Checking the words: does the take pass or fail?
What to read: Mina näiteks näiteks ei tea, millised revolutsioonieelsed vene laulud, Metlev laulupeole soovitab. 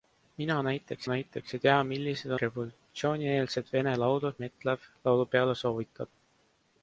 pass